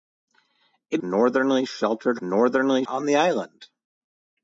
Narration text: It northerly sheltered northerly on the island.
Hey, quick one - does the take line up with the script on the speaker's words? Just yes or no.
yes